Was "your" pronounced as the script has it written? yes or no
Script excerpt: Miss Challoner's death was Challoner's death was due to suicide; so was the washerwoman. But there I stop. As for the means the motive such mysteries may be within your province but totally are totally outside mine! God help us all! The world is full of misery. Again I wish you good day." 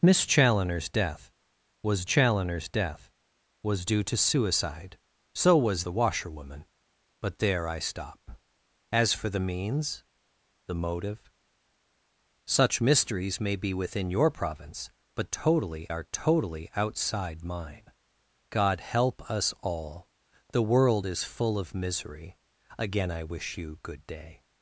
yes